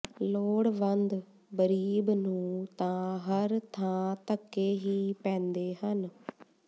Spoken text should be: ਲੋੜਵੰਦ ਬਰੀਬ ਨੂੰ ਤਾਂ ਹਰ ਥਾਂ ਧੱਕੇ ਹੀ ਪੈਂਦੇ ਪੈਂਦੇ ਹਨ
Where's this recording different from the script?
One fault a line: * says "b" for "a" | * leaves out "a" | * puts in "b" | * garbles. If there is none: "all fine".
* leaves out "ਪੈਂਦੇ"